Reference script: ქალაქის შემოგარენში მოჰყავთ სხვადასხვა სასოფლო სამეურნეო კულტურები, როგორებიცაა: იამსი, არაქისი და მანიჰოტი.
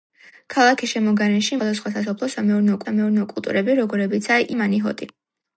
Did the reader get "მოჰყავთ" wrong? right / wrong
wrong